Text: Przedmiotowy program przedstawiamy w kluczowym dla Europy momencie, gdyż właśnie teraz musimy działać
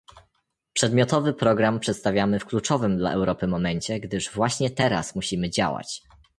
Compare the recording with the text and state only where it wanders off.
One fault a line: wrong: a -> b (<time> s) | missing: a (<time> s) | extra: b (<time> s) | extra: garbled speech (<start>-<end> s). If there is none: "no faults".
no faults